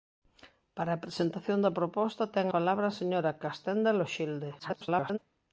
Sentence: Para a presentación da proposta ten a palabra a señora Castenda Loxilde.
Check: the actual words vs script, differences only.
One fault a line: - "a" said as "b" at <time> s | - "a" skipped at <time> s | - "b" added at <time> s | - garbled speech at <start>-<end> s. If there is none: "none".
- "a" skipped at 2.5 s
- garbled speech at 4.6-5.2 s